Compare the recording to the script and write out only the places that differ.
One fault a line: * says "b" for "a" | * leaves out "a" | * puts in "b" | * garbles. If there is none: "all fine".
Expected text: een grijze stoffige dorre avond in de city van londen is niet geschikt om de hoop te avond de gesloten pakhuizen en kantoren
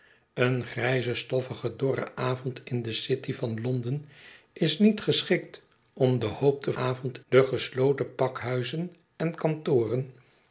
all fine